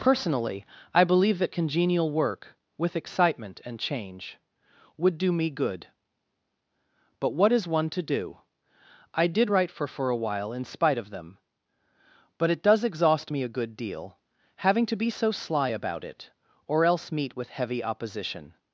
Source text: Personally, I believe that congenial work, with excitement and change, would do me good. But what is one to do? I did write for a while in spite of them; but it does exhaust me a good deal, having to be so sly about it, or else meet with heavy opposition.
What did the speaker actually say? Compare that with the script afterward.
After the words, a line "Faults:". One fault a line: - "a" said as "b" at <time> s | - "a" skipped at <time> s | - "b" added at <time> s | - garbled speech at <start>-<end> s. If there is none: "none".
Personally, I believe that congenial work, with excitement and change, would do me good. But what is one to do? I did write for for a while in spite of them; but it does exhaust me a good deal, having to be so sly about it, or else meet with heavy opposition.
Faults:
- "for" added at 9.9 s